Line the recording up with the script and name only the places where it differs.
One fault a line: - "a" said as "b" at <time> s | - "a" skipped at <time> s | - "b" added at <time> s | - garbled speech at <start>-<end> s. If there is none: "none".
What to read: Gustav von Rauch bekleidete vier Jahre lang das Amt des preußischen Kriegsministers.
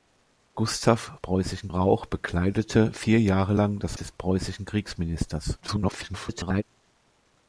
- "von" said as "preußischen" at 1.2 s
- "Amt" skipped at 4.0 s
- garbled speech at 5.6-6.6 s